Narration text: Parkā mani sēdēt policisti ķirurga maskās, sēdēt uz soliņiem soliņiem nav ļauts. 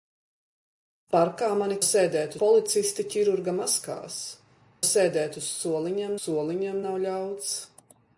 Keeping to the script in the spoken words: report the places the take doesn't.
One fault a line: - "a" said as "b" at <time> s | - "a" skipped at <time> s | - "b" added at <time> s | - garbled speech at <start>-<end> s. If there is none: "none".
none